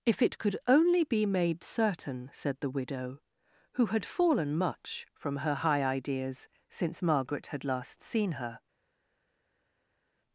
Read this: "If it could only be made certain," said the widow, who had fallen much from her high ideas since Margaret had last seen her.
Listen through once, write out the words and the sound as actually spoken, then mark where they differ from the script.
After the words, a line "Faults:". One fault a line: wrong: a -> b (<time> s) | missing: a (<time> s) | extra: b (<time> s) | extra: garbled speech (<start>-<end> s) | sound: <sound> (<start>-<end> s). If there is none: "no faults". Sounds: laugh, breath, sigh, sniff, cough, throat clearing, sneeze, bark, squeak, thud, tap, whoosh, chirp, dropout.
"If it could only be made certain," said the widow, who had fallen much from her high ideas since Margaret had last seen her.
Faults:
no faults